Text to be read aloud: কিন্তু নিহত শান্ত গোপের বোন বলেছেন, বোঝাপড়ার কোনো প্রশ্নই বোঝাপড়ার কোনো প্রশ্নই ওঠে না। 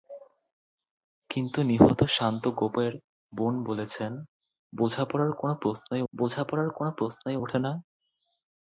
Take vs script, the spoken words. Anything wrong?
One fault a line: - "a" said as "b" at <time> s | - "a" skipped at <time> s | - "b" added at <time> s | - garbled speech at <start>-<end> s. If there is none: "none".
none